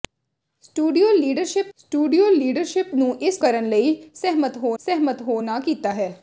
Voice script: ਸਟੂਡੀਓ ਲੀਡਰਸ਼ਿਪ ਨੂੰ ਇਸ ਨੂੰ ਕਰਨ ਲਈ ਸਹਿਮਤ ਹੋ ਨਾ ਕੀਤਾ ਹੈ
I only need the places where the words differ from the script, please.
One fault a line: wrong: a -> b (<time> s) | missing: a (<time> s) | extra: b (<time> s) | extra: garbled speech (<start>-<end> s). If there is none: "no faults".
extra: ਸਟੂਡੀਓ ਲੀਡਰਸ਼ਿਪ (1.8 s)
missing: ਨੂੰ (3.4 s)
extra: ਸਹਿਮਤ ਹੋ (4.8 s)